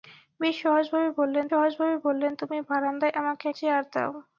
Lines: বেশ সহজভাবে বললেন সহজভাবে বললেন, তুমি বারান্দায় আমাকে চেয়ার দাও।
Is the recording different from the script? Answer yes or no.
no